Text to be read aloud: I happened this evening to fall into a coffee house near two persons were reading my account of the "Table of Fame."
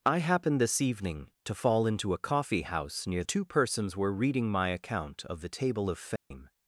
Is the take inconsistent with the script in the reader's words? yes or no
no